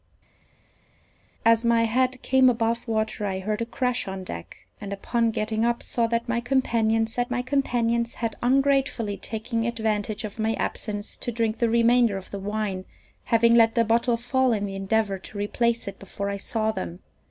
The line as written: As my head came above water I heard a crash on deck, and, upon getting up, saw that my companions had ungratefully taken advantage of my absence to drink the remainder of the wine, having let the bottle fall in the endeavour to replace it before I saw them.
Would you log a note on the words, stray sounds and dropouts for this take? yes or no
yes